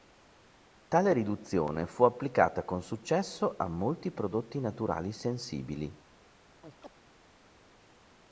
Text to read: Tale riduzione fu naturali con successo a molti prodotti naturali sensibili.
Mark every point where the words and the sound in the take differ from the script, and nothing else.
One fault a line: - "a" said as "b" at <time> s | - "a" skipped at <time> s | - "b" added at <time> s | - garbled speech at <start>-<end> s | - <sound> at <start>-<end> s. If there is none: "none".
- "naturali" said as "applicata" at 2.0 s
- chirp at 6.6-6.9 s